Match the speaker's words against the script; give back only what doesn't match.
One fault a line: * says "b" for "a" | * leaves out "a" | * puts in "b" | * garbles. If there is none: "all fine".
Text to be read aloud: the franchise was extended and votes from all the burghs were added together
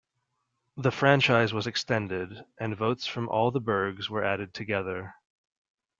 all fine